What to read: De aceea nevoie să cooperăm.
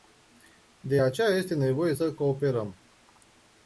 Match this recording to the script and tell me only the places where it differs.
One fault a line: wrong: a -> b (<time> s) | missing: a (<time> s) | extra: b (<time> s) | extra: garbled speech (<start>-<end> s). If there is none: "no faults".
extra: este (1.3 s)